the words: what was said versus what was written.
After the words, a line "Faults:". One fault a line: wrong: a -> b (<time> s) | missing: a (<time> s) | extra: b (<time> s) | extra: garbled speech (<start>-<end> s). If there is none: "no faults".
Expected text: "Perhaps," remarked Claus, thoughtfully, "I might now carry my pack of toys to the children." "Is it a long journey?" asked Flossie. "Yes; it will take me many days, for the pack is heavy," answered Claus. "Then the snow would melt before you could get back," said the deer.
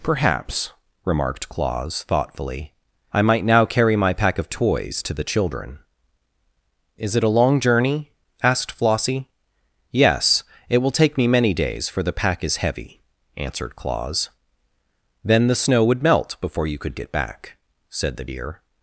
"Perhaps," remarked Claus, thoughtfully, "I might now carry my pack of toys to the children." "Is it a long journey?" asked Flossie. "Yes; it will take me many days, for the pack is heavy," answered Claus. "Then the snow would melt before you could get back," said the deer.
Faults:
no faults